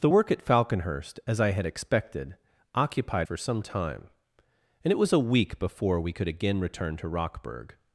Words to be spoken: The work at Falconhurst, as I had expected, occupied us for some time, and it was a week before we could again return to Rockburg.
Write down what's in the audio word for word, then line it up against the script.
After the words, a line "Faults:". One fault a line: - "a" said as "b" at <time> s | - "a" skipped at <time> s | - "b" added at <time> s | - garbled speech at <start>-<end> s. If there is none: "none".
The work at Falconhurst, as I had expected, occupied for some time, and it was a week before we could again return to Rockburg.
Faults:
- "us" skipped at 3.3 s